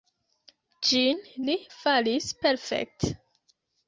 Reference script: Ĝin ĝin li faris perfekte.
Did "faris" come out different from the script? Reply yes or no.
no